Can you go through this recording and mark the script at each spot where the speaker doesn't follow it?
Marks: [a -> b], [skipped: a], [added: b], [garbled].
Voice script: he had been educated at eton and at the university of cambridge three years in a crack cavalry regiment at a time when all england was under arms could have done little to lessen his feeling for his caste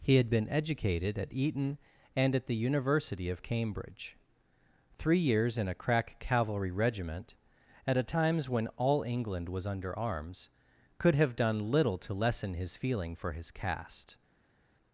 he had been educated at eton and at the university of cambridge three years in a crack cavalry regiment at a [time -> times] when all england was under arms could have done little to lessen his feeling for his caste